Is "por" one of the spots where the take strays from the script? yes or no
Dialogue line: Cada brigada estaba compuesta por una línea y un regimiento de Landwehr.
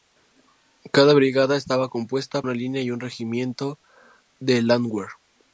yes